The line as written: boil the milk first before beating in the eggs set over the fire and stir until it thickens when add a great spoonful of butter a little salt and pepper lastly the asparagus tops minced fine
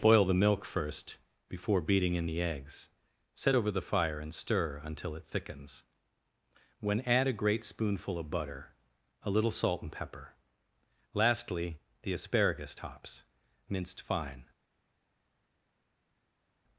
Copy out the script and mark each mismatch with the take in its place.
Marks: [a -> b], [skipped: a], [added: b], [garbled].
boil the milk first before beating in the eggs set over the fire and stir until it thickens when add a great spoonful of butter a little salt and pepper lastly the asparagus tops minced fine